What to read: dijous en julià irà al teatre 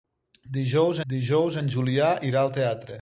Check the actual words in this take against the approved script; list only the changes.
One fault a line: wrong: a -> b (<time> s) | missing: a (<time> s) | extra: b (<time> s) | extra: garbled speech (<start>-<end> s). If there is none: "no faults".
extra: dijous (1.1 s)